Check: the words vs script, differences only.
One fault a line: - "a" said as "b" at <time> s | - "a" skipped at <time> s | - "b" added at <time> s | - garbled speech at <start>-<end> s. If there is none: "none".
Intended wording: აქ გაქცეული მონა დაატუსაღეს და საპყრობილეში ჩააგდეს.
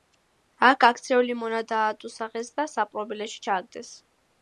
none